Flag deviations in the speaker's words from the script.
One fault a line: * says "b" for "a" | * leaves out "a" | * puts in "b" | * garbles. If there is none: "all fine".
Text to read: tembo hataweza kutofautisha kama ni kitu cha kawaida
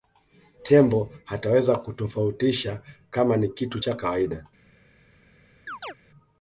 all fine